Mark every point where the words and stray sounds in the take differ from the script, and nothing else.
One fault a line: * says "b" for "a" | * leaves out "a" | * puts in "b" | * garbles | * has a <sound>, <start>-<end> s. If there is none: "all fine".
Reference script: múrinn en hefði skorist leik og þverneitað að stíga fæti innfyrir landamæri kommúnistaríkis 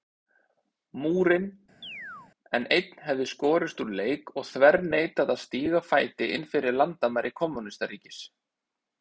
* has a chirp, 1.8-2.3 s
* puts in "einn"
* puts in "úr"